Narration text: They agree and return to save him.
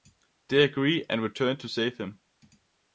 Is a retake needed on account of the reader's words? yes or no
no